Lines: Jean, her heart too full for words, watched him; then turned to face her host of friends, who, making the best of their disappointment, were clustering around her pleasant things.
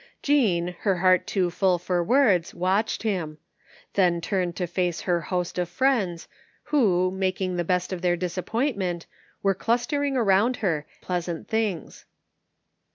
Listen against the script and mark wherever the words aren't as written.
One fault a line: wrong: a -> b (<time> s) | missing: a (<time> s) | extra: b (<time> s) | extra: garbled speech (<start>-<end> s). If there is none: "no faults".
no faults